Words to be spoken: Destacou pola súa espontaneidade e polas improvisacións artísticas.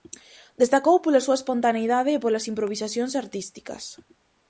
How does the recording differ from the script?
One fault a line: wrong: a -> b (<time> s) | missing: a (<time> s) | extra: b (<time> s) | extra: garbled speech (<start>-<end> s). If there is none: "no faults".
no faults